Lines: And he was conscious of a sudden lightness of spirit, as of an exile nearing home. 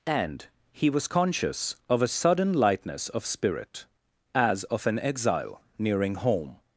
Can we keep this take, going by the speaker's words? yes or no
yes